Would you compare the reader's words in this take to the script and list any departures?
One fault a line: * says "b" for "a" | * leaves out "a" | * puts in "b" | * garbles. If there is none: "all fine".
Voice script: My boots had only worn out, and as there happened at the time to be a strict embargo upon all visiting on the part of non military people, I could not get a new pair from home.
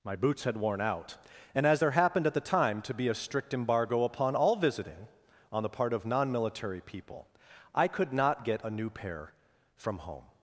* leaves out "only"